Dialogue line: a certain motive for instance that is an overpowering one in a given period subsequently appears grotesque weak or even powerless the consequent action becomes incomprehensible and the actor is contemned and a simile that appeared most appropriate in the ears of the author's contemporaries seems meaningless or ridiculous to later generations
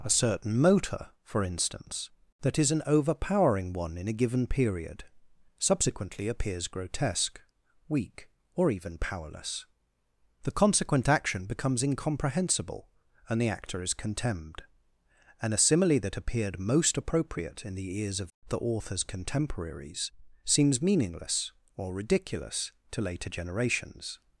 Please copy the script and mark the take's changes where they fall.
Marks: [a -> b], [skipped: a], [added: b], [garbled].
a certain [motive -> motor] for instance that is an overpowering one in a given period subsequently appears grotesque weak or even powerless the consequent action becomes incomprehensible and the actor is contemned and a simile that appeared most appropriate in the ears of the author's contemporaries seems meaningless or ridiculous to later generations